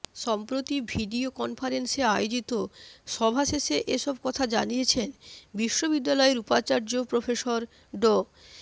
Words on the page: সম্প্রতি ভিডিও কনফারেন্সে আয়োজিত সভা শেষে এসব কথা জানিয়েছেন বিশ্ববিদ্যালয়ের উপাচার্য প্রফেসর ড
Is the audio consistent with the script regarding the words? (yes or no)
yes